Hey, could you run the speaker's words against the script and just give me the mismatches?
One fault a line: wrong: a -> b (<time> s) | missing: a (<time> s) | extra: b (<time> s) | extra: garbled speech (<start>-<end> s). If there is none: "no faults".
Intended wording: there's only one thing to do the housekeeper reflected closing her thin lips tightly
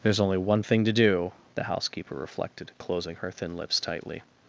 no faults